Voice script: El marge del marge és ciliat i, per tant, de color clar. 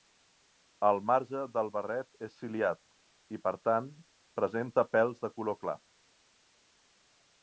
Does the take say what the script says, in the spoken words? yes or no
no